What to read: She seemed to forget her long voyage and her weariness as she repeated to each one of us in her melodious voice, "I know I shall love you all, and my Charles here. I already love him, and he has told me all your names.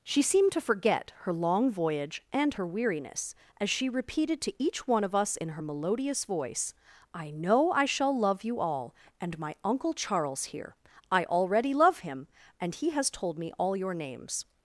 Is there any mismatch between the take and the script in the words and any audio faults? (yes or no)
yes